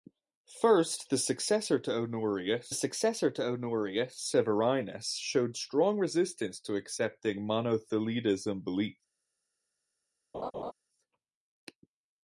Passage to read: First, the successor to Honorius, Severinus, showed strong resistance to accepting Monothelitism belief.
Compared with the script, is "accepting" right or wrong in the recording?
right